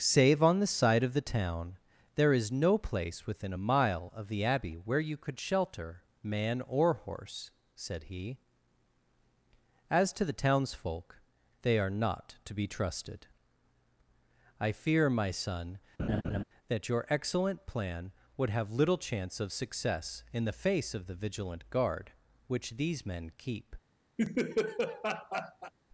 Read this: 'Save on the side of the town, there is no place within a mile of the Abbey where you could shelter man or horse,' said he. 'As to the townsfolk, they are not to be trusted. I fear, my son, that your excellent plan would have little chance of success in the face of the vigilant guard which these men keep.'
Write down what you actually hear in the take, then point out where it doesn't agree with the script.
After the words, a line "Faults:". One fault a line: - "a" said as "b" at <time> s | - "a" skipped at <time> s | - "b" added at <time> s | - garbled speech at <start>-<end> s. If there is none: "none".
'Save on the side of the town, there is no place within a mile of the Abbey where you could shelter man or horse,' said he. 'As to the townsfolk, they are not to be trusted. I fear, my son, that your excellent plan would have little chance of success in the face of the vigilant guard which these men keep.'
Faults:
none